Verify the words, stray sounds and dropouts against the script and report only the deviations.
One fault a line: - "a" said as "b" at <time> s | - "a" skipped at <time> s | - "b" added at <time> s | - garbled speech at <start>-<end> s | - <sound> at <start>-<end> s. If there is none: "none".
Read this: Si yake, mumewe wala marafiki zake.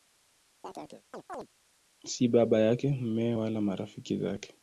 - chirp at 0.6-1.5 s
- "baba" added at 2.3 s